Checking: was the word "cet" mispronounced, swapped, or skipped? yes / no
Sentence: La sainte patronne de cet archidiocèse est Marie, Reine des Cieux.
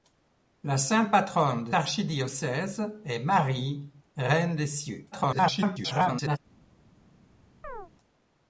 yes